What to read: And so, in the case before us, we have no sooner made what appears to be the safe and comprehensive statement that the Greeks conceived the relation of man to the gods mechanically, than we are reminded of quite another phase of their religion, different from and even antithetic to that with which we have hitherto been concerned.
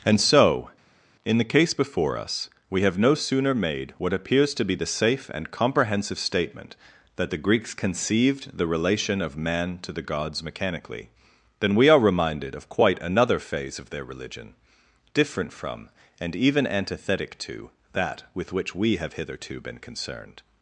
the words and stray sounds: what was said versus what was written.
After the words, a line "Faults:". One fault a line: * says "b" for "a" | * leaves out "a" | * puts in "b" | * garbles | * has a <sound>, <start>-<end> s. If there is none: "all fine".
And so, in the case before us, we have no sooner made what appears to be the safe and comprehensive statement that the Greeks conceived the relation of man to the gods mechanically, than we are reminded of quite another phase of their religion, different from and even antithetic to that with which we have hitherto been concerned.
Faults:
all fine